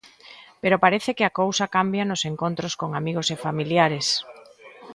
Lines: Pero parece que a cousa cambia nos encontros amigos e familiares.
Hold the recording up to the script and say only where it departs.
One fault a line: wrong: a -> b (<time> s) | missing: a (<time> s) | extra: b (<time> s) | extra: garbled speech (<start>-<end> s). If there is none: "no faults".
extra: con (2.8 s)